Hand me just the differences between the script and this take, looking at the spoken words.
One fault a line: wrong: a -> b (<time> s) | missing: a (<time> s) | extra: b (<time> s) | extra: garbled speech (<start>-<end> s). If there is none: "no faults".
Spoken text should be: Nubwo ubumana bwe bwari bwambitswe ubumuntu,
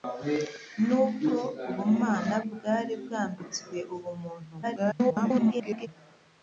missing: bwe (2.4 s)
extra: garbled speech (4.6-5.9 s)